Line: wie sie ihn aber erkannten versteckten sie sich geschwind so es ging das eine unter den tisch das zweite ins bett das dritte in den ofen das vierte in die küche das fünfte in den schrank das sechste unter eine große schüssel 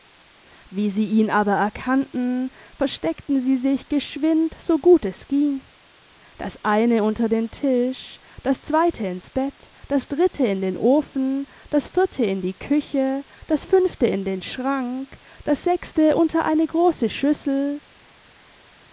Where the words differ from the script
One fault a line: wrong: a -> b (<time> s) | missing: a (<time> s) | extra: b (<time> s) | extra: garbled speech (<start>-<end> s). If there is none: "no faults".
extra: gut (4.8 s)